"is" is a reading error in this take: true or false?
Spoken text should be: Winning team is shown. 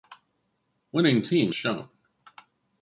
true